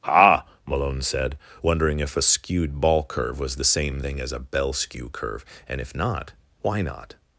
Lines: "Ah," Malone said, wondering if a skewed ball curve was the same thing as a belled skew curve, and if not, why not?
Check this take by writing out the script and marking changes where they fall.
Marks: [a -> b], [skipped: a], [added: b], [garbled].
"Ah," Malone said, wondering if a skewed ball curve was the same thing as a [belled -> bell] skew curve, and if not, why not?